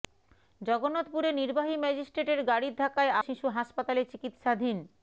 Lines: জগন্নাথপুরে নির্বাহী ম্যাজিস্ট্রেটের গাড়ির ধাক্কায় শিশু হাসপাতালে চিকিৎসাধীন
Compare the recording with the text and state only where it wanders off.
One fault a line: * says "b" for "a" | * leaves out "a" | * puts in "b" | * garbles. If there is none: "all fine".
all fine